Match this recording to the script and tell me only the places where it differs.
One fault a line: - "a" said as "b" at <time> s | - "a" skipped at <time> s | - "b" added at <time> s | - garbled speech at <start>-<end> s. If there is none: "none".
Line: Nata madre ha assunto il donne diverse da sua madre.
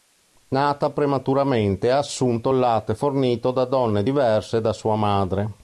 - "madre" said as "prematuramente" at 0.9 s
- "latte fornito da" added at 2.6 s